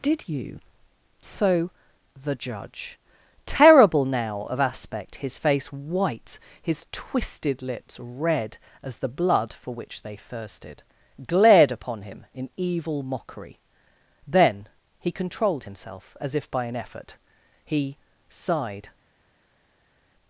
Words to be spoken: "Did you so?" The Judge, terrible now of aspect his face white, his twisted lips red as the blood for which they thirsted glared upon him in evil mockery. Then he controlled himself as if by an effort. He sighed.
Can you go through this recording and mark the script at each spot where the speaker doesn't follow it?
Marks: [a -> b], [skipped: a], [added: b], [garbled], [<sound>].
"Did you so?" The Judge, terrible now of aspect his face white, his twisted lips red as the blood for which they thirsted glared upon him in evil mockery. Then he controlled himself as if by an effort. He sighed.